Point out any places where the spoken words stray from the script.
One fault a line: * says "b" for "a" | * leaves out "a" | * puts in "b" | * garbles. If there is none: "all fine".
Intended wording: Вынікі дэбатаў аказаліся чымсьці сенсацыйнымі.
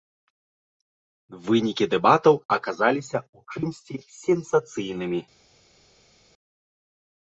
* puts in "ў"